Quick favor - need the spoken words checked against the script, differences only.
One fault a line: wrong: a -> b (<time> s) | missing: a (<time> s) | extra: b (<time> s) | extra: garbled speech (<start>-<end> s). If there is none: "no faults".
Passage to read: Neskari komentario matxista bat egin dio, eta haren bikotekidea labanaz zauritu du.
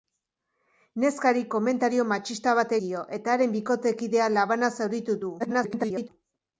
missing: egin (2.7 s)
extra: garbled speech (5.4-6.1 s)